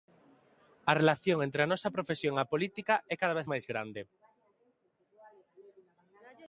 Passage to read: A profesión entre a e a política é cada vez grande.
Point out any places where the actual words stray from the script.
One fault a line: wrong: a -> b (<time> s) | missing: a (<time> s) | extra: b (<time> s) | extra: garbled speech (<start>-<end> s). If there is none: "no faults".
wrong: profesión -> relación (1.0 s)
extra: nosa profesión (1.7 s)
extra: máis (3.5 s)